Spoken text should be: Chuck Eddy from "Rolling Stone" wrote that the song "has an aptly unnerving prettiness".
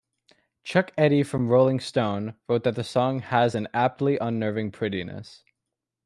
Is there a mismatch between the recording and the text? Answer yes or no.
no